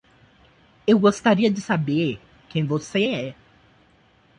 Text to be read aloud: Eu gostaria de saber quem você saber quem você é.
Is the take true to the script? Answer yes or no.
no